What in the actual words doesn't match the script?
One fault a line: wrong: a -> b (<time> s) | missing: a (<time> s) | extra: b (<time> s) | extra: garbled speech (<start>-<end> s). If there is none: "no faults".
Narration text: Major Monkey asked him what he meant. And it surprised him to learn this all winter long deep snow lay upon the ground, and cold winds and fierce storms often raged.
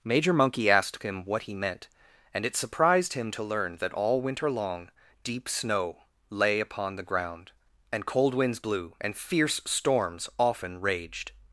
wrong: this -> that (3.8 s)
extra: blew (8.6 s)